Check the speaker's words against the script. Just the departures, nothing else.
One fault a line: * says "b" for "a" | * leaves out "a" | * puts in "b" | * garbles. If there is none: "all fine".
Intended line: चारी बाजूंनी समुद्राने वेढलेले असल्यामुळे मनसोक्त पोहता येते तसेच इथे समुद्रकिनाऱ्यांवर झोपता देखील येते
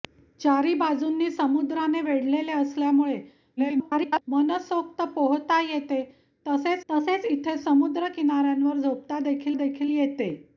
* garbles
* puts in "तसेच"
* puts in "देखील"